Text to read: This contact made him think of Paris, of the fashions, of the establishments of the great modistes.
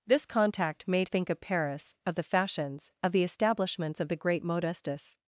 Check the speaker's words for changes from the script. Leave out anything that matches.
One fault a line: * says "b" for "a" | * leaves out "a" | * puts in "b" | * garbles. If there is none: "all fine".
* leaves out "him"